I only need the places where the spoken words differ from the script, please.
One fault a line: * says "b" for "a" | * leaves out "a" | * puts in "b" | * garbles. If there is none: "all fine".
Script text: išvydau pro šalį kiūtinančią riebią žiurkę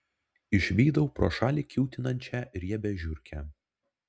all fine